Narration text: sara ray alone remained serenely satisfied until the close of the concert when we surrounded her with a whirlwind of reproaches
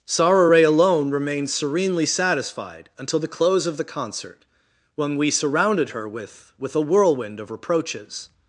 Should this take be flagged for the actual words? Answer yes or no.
yes